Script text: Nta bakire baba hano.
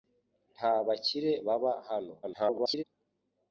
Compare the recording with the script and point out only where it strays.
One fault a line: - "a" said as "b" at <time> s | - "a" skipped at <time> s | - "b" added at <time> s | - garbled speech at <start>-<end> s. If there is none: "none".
- garbled speech at 2.2-2.8 s